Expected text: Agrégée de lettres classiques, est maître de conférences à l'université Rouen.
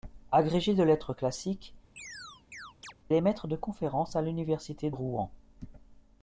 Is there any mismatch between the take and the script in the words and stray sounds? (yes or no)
yes